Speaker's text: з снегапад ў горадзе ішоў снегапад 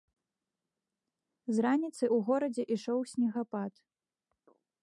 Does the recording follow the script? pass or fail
fail